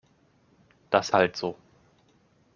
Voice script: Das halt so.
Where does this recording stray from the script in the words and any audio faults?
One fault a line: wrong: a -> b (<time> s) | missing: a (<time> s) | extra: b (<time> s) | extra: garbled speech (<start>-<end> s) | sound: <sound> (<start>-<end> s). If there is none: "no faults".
no faults